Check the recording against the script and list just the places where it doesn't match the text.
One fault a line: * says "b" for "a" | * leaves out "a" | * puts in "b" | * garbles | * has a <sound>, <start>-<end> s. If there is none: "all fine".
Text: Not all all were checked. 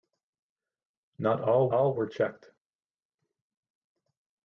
all fine